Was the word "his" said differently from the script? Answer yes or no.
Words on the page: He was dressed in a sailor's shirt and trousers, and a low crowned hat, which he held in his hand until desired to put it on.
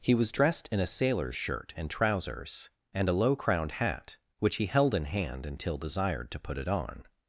yes